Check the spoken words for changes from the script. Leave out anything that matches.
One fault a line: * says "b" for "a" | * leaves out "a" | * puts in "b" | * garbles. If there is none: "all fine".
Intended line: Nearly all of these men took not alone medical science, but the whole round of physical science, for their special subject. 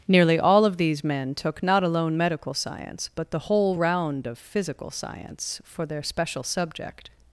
all fine